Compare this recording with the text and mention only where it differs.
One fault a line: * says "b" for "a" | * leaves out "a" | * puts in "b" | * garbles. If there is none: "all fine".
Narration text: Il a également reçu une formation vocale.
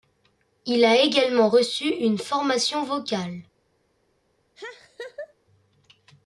all fine